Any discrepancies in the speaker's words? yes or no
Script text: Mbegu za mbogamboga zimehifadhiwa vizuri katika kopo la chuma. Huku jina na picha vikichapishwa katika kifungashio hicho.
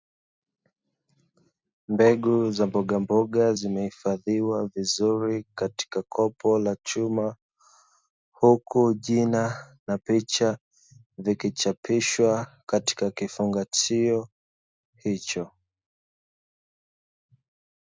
no